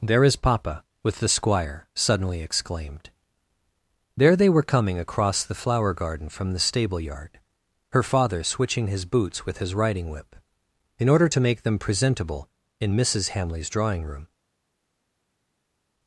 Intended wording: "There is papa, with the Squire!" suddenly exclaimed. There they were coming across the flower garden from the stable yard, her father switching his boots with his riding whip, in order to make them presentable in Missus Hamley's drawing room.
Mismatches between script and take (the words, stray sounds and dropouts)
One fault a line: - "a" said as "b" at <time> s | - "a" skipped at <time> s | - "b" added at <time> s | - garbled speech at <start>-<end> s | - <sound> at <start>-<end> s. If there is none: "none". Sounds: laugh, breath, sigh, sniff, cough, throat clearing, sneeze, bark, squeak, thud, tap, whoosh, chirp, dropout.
none